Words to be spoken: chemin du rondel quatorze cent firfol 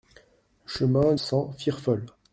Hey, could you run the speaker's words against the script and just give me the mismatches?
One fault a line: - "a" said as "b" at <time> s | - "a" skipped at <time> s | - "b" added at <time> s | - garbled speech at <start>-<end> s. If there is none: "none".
- "du rondel quatorze" skipped at 1.1 s